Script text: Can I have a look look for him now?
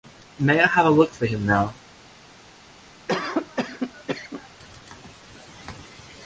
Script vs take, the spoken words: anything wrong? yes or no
yes